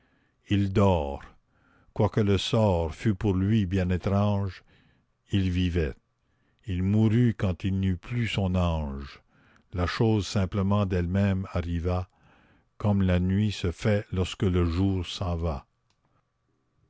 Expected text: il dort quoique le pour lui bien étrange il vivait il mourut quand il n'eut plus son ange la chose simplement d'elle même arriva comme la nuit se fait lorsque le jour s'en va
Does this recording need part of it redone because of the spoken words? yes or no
yes